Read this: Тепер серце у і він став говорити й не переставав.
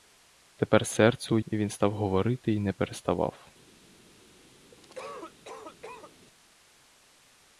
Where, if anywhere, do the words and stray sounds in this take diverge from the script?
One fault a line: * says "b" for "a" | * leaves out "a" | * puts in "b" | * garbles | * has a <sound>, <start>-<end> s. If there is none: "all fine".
* has a cough, 4.7-6.1 s